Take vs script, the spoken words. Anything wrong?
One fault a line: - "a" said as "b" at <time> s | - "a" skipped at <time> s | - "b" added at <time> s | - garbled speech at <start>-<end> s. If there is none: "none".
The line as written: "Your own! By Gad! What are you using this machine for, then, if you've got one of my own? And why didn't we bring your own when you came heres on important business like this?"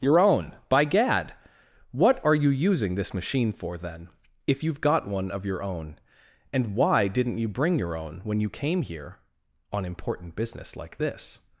- "my" said as "your" at 5.4 s
- "we" said as "you" at 7.4 s
- "heres" said as "here" at 8.8 s